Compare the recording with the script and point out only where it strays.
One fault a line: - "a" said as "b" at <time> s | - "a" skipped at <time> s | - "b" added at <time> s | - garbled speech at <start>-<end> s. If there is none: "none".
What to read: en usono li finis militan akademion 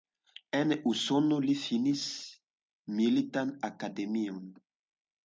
none